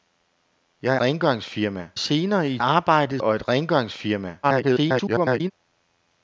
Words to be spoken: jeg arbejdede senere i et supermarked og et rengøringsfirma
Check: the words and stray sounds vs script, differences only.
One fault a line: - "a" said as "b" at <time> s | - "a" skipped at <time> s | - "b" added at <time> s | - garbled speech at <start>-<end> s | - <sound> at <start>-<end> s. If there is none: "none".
- "arbejdede" said as "rengøringsfirma" at 1.0 s
- "supermarked" said as "arbejdede" at 2.6 s
- garbled speech at 4.4-5.5 s